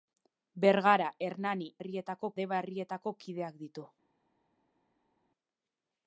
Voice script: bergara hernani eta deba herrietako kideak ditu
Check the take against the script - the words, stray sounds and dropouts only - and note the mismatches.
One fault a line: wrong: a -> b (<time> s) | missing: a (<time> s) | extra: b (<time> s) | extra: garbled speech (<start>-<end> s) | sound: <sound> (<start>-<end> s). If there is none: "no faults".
wrong: eta -> herrietako (1.8 s)